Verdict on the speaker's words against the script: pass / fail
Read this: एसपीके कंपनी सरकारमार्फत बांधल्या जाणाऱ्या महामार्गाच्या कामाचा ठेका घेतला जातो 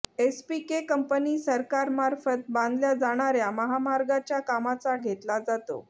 fail